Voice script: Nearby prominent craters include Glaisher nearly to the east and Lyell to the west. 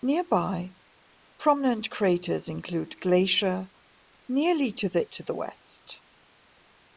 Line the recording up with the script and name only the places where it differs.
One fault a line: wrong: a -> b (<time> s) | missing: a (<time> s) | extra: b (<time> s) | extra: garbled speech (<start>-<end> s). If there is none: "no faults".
missing: east and Lyell (5.0 s)